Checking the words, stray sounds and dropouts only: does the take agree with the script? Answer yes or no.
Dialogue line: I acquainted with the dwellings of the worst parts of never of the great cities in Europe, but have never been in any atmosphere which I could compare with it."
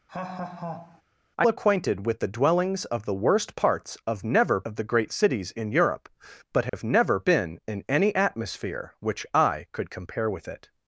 no